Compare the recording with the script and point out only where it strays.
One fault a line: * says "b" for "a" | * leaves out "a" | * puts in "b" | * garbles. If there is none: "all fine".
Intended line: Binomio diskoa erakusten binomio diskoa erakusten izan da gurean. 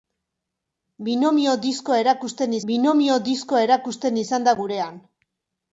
all fine